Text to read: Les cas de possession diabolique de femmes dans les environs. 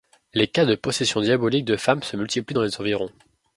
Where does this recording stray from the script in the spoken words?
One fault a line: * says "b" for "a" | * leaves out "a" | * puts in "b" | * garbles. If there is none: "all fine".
* puts in "se multiplient"